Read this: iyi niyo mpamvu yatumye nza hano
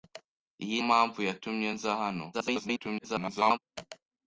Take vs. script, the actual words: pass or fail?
fail